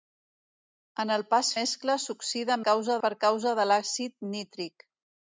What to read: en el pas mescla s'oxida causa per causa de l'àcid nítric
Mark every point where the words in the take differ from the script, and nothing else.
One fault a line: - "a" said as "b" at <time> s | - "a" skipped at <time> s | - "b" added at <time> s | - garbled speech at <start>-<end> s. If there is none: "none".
none